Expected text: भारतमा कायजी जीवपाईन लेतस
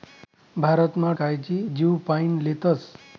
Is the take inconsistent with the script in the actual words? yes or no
no